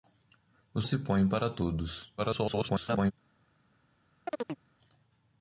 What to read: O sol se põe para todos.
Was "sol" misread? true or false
true